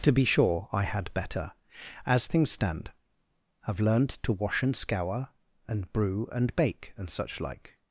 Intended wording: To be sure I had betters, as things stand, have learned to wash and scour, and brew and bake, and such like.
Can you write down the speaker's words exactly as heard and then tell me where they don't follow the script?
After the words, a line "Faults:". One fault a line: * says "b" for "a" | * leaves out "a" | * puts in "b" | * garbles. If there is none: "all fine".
To be sure I had better, as things stand, have learned to wash and scour, and brew and bake, and such like.
Faults:
* says "better" for "betters"